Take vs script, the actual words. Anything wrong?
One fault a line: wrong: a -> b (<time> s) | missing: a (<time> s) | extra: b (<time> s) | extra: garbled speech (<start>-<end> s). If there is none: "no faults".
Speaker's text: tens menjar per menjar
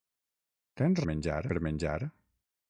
no faults